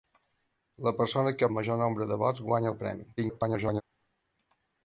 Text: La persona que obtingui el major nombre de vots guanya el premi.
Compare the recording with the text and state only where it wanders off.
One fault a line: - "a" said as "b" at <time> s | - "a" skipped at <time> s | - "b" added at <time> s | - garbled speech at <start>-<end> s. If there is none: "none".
- "obtingui" skipped at 1.5 s
- garbled speech at 3.2-3.8 s